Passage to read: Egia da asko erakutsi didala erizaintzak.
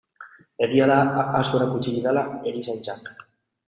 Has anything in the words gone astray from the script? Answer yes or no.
no